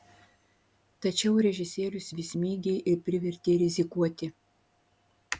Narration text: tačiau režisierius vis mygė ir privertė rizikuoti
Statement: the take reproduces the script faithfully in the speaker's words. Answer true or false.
true